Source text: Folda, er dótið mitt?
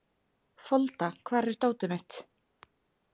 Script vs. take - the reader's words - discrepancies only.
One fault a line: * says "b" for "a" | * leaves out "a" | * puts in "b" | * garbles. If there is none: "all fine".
* puts in "hvar"